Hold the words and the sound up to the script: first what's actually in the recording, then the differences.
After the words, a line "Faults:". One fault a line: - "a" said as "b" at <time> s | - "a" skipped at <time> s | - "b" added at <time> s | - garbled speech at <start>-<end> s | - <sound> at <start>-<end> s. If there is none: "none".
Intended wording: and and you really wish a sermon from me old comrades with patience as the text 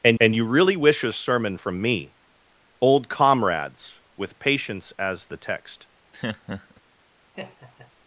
and and you really wish a sermon from me old comrades with patience as the text
Faults:
- laugh at 6.1-6.8 s
- laugh at 7.3-7.9 s